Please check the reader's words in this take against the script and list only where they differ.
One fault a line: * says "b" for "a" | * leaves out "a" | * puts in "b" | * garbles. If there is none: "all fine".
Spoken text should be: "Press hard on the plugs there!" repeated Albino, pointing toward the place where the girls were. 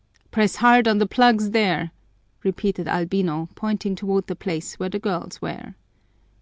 all fine